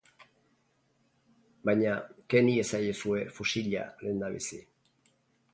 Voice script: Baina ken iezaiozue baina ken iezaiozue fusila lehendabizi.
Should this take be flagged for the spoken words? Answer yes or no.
yes